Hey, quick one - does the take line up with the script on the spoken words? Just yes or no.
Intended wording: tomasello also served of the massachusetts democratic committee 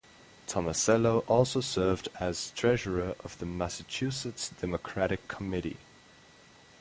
no